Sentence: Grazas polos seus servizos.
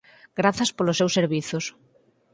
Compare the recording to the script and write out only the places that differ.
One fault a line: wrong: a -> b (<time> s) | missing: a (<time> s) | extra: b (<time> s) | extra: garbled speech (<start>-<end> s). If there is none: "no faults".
no faults